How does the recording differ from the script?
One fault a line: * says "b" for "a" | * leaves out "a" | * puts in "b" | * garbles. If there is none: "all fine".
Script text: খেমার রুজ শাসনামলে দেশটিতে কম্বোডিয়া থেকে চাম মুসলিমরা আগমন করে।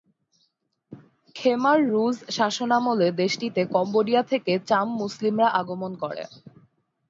all fine